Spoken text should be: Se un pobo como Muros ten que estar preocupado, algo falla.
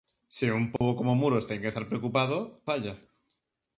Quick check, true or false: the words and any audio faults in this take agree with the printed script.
false